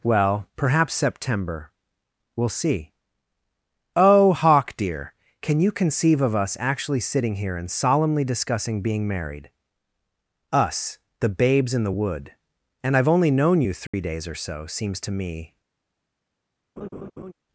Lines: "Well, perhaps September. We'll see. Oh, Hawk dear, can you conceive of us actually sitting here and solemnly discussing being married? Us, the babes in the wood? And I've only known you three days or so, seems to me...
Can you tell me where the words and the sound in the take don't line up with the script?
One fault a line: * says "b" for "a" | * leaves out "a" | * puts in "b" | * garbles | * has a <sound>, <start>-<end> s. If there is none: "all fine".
* has a dropout, 13.9-13.9 s
* has a laugh, 16.8-17.3 s